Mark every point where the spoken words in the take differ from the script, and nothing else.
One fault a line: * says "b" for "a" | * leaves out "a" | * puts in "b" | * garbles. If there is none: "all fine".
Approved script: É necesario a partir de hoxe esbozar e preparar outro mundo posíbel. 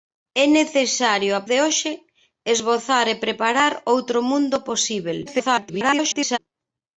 * leaves out "partir"
* garbles